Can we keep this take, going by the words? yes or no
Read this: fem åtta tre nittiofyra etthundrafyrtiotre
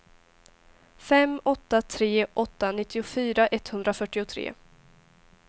no